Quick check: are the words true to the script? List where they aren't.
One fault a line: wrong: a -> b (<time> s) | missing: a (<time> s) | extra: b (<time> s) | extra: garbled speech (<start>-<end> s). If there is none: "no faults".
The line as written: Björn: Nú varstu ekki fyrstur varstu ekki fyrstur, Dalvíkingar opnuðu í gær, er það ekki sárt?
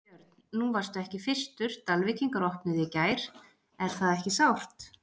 missing: varstu ekki fyrstur (1.8 s)